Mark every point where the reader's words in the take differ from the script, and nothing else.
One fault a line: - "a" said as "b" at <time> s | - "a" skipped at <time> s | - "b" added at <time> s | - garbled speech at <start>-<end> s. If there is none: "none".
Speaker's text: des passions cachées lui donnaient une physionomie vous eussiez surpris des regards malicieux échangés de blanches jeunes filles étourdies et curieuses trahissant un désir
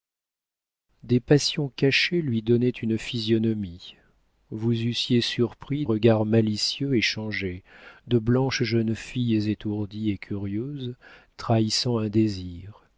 - "des" skipped at 5.8 s